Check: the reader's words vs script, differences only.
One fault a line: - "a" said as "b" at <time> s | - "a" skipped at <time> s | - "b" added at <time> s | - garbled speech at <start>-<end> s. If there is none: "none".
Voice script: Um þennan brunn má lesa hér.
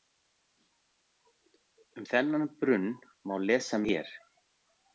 none